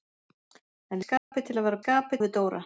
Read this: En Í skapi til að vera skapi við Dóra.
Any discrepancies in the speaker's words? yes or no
no